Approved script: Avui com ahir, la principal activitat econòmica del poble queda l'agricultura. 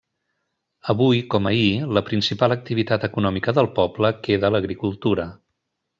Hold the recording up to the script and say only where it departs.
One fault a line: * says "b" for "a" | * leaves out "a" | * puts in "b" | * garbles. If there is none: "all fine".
all fine